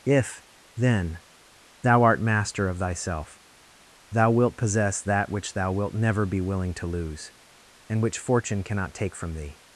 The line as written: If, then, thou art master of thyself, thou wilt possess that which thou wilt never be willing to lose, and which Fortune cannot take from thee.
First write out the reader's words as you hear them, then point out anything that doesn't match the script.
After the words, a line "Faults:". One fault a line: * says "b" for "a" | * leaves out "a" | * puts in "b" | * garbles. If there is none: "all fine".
If, then, thou art master of thyself, thou wilt possess that which thou wilt never be willing to lose, and which Fortune cannot take from thee.
Faults:
all fine